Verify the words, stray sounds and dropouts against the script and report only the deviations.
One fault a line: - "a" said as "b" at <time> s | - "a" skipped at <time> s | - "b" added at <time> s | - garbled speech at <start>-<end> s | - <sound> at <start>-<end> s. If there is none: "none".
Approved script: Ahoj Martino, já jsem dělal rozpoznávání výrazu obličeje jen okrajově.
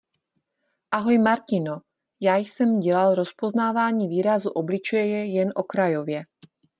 none